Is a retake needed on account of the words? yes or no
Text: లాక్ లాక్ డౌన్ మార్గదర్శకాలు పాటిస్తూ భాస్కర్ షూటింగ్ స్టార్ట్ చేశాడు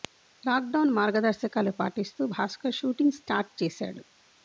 yes